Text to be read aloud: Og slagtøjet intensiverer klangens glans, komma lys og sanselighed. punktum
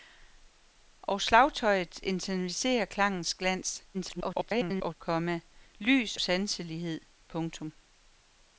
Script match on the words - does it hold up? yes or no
no